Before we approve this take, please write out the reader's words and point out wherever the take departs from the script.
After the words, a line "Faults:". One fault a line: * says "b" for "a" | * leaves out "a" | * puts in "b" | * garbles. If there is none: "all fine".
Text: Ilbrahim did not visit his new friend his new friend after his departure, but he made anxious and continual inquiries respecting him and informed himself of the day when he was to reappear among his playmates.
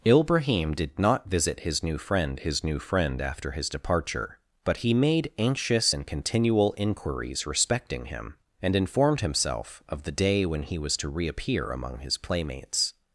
Ilbrahim did not visit his new friend his new friend after his departure, but he made anxious and continual inquiries respecting him and informed himself of the day when he was to reappear among his playmates.
Faults:
all fine